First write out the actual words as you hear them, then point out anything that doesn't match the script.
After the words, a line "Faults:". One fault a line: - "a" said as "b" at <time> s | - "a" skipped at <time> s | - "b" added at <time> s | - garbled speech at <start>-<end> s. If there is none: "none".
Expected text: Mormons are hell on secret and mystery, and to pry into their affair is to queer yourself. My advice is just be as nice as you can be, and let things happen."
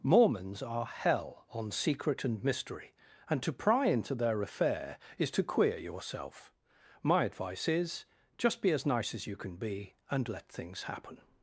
Mormons are hell on secret and mystery, and to pry into their affair is to queer yourself. My advice is just be as nice as you can be, and let things happen."
Faults:
none